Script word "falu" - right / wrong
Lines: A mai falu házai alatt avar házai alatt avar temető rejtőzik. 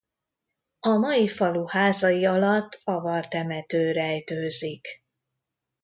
right